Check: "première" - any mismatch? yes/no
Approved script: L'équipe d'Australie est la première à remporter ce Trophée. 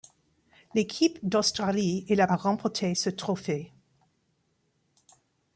yes